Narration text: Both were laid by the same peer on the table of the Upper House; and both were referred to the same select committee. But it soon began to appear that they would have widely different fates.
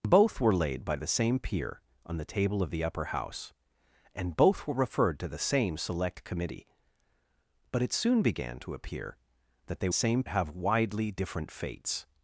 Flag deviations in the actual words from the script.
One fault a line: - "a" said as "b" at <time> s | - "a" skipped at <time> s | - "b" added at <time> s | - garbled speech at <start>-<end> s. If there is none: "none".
- "would" said as "same" at 9.9 s